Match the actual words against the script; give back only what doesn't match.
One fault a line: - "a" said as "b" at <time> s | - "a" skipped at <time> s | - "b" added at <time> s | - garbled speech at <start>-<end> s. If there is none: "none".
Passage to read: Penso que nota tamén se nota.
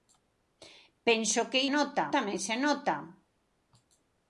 none